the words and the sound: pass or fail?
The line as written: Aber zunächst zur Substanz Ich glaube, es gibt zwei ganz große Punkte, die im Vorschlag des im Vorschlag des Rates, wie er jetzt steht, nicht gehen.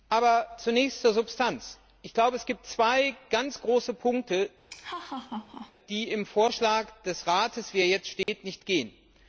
fail